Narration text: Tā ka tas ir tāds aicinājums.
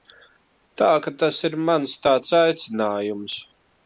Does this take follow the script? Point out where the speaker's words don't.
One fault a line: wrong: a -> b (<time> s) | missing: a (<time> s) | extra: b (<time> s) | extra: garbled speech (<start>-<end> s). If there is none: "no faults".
extra: mans (1.7 s)